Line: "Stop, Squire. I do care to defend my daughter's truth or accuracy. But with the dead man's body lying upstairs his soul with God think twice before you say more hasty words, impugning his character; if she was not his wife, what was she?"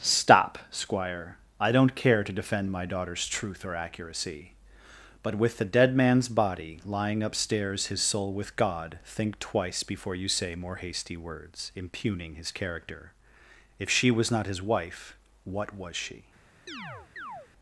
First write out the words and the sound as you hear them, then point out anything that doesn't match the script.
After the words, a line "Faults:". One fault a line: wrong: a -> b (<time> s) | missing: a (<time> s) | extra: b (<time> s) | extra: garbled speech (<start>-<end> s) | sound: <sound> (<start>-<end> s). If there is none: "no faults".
"Stop, Squire. I don't care to defend my daughter's truth or accuracy. But with the dead man's body lying upstairs his soul with God think twice before you say more hasty words, impugning his character; if she was not his wife, what was she?"
Faults:
wrong: do -> don't (1.7 s)
sound: chirp (16.7-17.5 s)